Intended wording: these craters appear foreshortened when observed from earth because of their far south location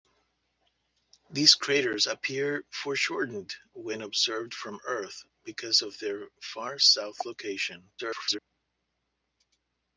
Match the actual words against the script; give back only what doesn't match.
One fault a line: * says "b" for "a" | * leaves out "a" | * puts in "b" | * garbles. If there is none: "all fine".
* garbles